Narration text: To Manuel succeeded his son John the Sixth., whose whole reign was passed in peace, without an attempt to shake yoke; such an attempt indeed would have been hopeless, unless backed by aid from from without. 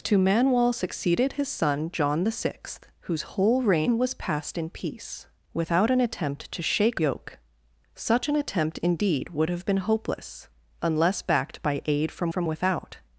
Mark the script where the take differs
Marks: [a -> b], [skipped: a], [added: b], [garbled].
To Manuel succeeded his son John the Sixth., whose whole reign was passed in peace, without an attempt to shake yoke; such an attempt indeed would have been hopeless, unless backed by aid from from without.